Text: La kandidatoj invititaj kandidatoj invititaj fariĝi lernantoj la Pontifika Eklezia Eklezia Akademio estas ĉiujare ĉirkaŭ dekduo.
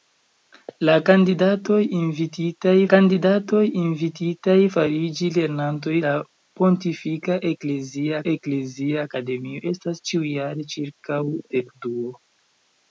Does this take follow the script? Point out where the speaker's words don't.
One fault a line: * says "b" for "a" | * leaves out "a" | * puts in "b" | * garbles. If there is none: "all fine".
all fine